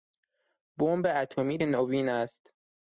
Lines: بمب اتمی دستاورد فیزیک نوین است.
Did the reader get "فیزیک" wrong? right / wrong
wrong